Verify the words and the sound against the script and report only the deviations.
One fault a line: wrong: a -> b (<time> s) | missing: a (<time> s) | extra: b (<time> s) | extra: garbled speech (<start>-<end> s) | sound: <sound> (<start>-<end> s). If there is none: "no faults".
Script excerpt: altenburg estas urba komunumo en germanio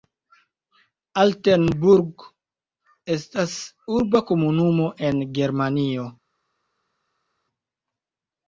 no faults